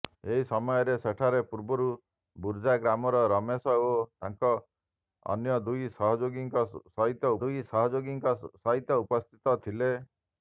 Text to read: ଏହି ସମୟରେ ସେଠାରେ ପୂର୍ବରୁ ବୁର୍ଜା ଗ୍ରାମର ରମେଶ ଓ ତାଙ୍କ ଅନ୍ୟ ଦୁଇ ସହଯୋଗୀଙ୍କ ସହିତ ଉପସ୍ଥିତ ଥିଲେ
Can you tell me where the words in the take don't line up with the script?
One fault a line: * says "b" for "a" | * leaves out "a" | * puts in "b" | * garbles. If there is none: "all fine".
* puts in "ଦୁଇ ସହଯୋଗୀଙ୍କ ସହିତ"